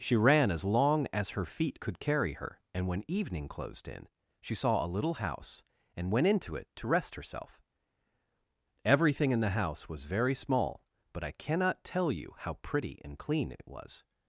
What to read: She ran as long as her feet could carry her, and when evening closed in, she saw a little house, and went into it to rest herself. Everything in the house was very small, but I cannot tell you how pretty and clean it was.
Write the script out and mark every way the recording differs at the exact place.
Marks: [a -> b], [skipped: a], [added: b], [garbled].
She ran as long as her feet could carry her, and when evening closed in, she saw a little house, and went into it to rest herself. Everything in the house was very small, but I cannot tell you how pretty and clean it [added: it] was.